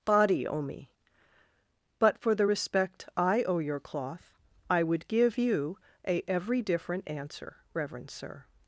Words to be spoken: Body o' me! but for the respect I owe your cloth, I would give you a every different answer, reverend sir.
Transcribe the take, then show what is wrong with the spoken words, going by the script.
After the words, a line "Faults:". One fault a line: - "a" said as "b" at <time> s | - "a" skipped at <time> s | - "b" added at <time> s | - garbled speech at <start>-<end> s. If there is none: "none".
Body o' me! but for the respect I owe your cloth, I would give you a every different answer, reverend sir.
Faults:
none